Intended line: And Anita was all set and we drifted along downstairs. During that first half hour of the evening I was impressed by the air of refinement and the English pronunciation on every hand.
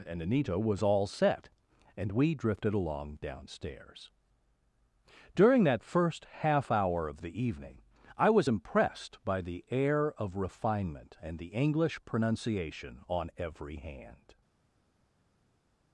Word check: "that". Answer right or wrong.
right